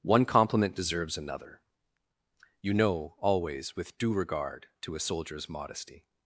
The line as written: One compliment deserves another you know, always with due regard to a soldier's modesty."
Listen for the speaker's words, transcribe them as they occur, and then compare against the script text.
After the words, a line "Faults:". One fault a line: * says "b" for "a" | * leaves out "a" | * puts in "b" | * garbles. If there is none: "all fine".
One compliment deserves another you know, always with due regard to a soldier's modesty."
Faults:
all fine